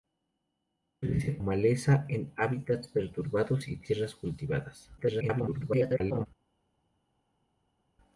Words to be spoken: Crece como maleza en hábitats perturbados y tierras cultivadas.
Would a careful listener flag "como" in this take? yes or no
yes